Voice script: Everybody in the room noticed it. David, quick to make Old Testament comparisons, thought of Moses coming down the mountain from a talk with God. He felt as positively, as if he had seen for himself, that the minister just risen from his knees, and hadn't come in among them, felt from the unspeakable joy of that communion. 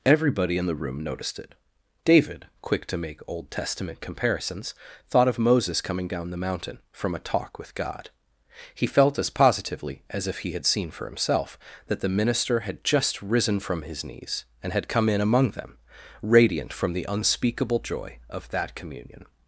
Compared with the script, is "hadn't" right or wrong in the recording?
wrong